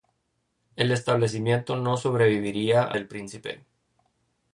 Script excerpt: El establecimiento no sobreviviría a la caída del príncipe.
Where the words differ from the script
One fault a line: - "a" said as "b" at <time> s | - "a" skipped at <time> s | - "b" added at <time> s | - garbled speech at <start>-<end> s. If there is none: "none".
- "la caída" skipped at 3.0 s